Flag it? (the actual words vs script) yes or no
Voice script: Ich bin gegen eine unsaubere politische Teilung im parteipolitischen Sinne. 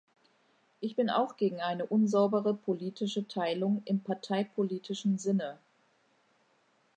yes